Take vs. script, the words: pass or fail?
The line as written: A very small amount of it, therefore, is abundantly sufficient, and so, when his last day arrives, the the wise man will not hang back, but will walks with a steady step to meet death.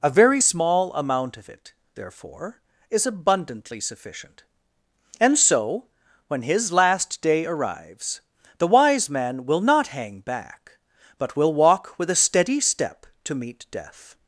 fail